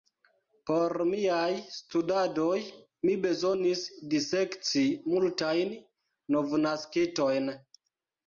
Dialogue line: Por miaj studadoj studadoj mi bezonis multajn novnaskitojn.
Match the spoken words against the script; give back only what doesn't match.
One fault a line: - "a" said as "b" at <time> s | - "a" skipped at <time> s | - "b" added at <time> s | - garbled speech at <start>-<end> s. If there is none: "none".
- "studadoj" skipped at 2.5 s
- "disekci" added at 4.1 s